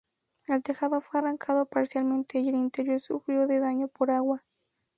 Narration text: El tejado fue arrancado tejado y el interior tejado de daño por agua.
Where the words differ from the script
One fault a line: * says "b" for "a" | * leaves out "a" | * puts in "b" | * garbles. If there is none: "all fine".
* says "parcialmente" for "tejado"
* says "sufrió" for "tejado"